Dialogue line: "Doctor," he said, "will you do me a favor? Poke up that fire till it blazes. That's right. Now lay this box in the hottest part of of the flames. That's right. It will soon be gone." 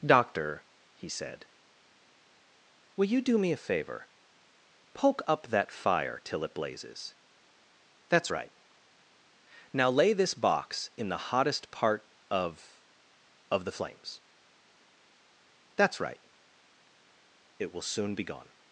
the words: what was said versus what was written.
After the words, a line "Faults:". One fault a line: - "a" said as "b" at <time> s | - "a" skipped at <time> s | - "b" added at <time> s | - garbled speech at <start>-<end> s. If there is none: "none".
"Doctor," he said, "will you do me a favor? Poke up that fire till it blazes. That's right. Now lay this box in the hottest part of of the flames. That's right. It will soon be gone."
Faults:
none